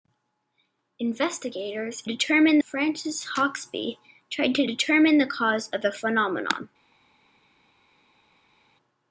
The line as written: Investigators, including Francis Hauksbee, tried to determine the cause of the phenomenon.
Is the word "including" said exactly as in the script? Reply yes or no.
no